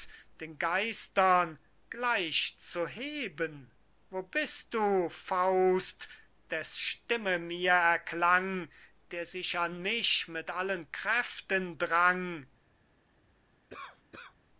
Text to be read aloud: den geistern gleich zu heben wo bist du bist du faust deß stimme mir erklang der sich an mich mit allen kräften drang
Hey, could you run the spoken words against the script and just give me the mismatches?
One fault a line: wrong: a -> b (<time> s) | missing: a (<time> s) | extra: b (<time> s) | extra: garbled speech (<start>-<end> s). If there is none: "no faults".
missing: bist du (5.1 s)